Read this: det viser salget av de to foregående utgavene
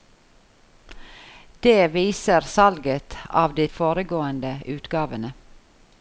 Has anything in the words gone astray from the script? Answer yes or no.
yes